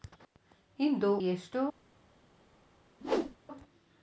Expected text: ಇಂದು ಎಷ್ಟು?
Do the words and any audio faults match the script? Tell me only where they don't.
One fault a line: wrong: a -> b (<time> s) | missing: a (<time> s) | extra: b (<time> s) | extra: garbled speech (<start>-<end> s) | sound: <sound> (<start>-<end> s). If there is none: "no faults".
sound: whoosh (3.0-3.4 s)